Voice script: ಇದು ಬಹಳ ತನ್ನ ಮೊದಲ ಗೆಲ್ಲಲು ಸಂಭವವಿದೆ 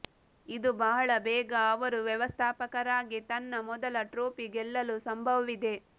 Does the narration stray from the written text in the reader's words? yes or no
yes